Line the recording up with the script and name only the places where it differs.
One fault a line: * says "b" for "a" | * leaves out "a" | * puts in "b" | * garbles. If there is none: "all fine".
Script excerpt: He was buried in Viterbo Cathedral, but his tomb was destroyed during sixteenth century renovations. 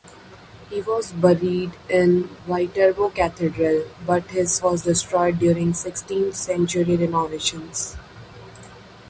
* leaves out "tomb"